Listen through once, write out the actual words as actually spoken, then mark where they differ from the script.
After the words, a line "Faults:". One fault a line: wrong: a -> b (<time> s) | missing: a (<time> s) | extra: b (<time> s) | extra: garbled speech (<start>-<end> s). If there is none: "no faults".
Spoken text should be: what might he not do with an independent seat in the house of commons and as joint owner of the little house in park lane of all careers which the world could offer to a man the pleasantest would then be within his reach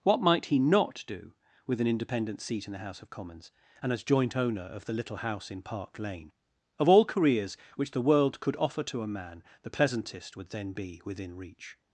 what might he not do with an independent seat in the house of commons and as joint owner of the little house in park lane of all careers which the world could offer to a man the pleasantest would then be within reach
Faults:
missing: his (11.4 s)